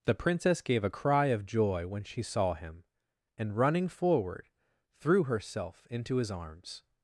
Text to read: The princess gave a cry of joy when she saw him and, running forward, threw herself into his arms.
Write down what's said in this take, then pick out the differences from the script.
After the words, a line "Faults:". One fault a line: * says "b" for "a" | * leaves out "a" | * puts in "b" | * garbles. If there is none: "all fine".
The princess gave a cry of joy when she saw him and, running forward, threw herself into his arms.
Faults:
all fine